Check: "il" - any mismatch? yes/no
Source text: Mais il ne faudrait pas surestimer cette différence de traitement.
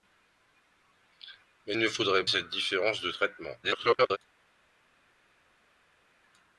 yes